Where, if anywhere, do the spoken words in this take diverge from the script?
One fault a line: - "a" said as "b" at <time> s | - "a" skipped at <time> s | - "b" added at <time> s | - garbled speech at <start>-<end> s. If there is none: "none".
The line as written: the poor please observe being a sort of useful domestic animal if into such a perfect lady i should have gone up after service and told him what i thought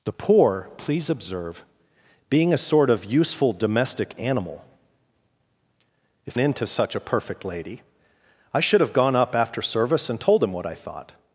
none